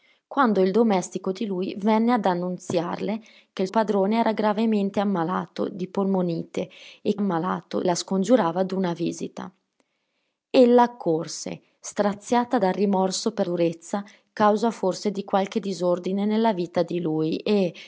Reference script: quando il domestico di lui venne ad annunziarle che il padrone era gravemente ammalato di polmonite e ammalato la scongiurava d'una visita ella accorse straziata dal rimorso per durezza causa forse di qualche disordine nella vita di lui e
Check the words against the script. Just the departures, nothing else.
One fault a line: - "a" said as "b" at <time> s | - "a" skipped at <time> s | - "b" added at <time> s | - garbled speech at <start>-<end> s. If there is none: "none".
none